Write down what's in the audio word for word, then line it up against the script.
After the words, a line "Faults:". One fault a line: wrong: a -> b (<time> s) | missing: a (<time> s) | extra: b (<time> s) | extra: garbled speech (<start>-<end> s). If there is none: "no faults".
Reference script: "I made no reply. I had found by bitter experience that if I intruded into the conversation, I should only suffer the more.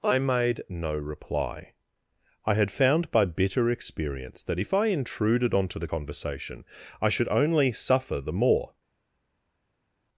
"I made no reply. I had found by bitter experience that if I intruded onto the conversation, I should only suffer the more.
Faults:
wrong: into -> onto (5.5 s)